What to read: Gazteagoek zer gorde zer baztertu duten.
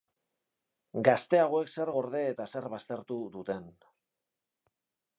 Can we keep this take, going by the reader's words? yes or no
no